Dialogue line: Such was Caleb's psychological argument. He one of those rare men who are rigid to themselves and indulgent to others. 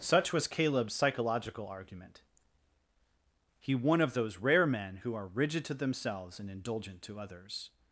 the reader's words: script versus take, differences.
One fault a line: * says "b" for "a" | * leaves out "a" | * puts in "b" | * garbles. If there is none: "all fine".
all fine